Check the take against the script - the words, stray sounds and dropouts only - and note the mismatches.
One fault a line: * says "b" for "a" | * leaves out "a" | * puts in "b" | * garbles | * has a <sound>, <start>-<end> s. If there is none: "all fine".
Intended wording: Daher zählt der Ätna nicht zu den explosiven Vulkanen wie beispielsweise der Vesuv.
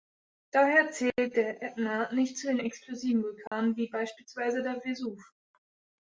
* has a dropout, 3.5-3.5 s